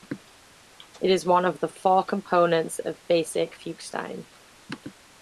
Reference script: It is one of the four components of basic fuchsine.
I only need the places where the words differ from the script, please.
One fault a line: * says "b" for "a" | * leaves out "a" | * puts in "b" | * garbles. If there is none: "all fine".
all fine